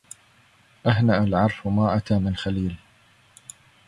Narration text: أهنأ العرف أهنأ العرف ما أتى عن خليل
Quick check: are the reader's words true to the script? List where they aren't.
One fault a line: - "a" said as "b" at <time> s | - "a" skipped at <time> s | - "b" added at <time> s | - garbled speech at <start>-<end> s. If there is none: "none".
- "أهنأ العرف" skipped at 1.7 s
- "عن" said as "من" at 2.2 s